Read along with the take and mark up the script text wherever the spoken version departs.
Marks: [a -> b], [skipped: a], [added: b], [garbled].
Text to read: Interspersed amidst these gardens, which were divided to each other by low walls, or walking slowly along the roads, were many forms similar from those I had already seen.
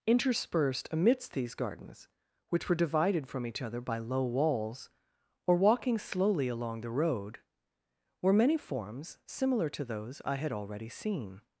Interspersed amidst these gardens, which were divided [to -> from] each other by low walls, or walking slowly along the [roads, -> road] were many forms similar [from -> to] those I had already seen.